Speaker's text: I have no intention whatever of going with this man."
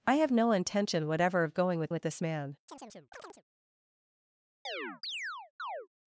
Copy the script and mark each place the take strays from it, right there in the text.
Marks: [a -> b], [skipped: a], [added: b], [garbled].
I have no intention whatever of going with [added: with] this man."